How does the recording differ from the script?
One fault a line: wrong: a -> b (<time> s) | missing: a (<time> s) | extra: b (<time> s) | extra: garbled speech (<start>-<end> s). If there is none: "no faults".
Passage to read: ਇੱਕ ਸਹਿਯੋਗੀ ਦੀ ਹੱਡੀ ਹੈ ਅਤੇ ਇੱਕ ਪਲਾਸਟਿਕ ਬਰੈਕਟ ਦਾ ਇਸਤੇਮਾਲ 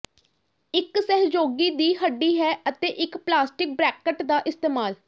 no faults